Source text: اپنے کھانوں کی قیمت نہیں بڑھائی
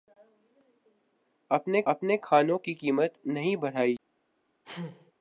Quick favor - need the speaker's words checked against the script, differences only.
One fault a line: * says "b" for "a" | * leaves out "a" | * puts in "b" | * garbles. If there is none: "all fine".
* puts in "اپنے"